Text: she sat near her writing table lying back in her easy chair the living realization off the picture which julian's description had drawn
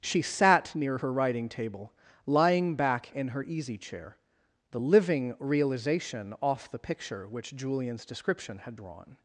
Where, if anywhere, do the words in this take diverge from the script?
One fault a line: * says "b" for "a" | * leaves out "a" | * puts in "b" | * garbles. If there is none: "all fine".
all fine